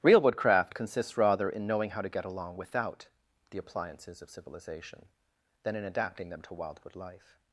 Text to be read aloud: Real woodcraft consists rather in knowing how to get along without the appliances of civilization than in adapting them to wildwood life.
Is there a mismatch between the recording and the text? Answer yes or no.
no